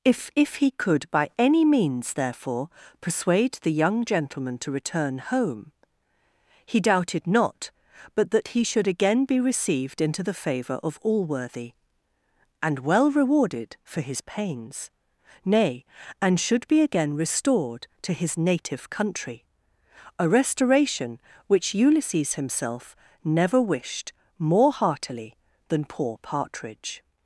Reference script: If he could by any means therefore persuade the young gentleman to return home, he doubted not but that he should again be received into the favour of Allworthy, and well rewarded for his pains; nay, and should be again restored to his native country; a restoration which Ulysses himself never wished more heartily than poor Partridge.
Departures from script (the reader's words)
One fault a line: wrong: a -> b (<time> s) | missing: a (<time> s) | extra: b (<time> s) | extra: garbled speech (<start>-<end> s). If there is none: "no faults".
extra: if (0.3 s)